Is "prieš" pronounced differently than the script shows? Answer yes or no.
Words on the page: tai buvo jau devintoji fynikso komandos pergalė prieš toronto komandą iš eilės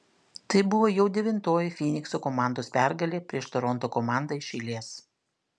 no